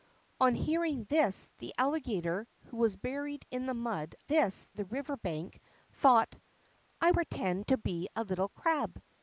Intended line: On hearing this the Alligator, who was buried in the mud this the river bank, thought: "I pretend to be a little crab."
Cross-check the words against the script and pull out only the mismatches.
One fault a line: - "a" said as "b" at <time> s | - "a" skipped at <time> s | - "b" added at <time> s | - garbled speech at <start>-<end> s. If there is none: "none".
none